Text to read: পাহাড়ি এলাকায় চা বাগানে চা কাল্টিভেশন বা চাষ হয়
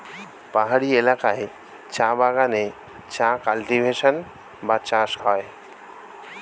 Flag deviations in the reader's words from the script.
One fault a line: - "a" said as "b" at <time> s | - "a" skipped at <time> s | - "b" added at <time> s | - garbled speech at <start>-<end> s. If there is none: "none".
none